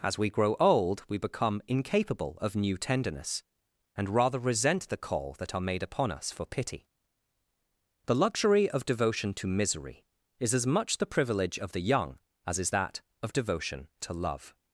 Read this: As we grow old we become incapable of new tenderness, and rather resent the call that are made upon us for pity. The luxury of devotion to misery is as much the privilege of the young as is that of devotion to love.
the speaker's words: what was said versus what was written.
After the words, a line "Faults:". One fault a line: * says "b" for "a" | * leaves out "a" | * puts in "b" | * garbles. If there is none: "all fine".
As we grow old we become incapable of new tenderness, and rather resent the call that are made upon us for pity. The luxury of devotion to misery is as much the privilege of the young as is that of devotion to love.
Faults:
all fine